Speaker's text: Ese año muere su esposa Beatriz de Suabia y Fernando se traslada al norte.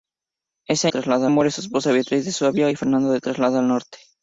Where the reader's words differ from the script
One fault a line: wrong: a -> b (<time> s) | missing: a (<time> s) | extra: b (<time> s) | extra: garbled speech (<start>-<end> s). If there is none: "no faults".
wrong: año -> traslada (0.9 s)